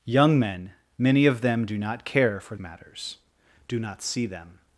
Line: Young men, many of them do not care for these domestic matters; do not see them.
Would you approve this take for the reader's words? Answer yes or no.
no